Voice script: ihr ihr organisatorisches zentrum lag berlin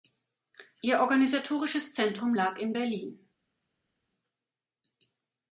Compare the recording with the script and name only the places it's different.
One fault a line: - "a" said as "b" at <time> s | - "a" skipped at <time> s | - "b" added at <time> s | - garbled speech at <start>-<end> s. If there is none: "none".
- "ihr" skipped at 1.0 s
- "in" added at 2.6 s